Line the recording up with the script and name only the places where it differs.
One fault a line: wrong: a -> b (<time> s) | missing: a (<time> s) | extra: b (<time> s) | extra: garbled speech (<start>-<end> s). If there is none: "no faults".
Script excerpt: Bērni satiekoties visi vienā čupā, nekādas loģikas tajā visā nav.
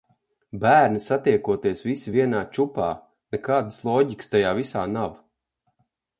no faults